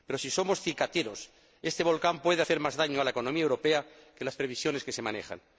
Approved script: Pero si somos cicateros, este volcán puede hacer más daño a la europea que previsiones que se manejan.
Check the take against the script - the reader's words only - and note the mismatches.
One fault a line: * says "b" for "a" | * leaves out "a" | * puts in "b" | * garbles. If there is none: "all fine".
* puts in "economía"
* puts in "las"